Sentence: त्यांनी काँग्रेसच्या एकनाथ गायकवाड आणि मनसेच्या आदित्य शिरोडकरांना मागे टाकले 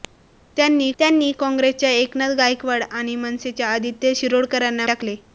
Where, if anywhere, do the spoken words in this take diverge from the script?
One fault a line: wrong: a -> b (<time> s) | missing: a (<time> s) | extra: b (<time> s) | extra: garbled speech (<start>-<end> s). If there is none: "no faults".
extra: त्यांनी (1.0 s)
missing: मागे (4.9 s)